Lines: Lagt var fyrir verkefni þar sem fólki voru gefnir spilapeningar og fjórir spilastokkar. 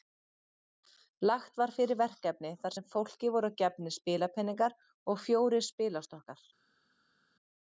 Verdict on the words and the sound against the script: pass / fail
pass